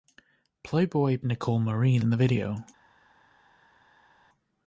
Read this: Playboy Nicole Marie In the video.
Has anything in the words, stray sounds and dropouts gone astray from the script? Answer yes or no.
no